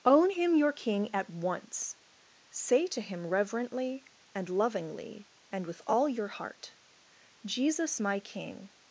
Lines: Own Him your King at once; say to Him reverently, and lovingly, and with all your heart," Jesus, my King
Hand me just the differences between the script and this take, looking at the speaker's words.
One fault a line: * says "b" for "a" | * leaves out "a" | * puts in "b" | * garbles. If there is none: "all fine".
all fine